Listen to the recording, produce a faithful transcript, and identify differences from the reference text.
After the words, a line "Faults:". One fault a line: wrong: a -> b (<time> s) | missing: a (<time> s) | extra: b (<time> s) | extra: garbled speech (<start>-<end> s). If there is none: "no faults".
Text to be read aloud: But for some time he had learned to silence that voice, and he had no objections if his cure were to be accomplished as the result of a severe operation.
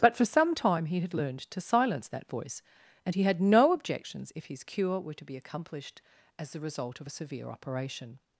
But for some time he had learned to silence that voice, and he had no objections if his cure were to be accomplished as the result of a severe operation.
Faults:
no faults